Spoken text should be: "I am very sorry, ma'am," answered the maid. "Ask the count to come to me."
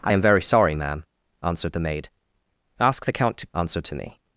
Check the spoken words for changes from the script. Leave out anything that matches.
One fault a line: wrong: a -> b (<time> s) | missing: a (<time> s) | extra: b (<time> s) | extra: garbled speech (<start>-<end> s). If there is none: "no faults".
wrong: come -> answered (3.5 s)